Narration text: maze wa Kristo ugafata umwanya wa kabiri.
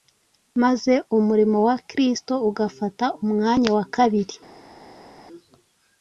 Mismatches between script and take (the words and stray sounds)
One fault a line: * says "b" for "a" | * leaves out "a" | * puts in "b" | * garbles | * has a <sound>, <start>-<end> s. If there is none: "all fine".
* puts in "umurimo"